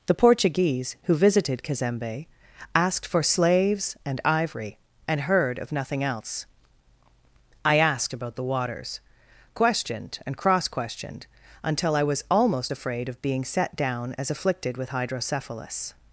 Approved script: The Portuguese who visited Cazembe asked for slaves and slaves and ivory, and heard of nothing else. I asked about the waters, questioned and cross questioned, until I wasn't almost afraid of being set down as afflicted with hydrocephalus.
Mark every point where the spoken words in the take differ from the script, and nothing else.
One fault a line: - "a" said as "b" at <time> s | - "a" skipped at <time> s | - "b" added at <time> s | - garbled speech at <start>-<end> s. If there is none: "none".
- "slaves and" skipped at 4.2 s
- "wasn't" said as "was" at 12.0 s